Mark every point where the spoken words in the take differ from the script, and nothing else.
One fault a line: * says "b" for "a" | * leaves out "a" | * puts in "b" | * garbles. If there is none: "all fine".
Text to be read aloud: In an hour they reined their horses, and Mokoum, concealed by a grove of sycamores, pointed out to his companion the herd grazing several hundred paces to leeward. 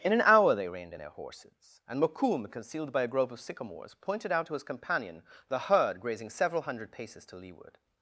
all fine